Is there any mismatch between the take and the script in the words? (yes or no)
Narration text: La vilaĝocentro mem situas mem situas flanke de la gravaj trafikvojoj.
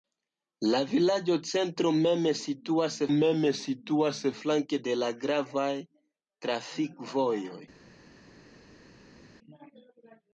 no